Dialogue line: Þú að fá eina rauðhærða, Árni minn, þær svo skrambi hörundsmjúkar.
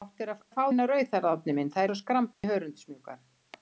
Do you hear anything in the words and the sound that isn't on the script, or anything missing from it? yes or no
yes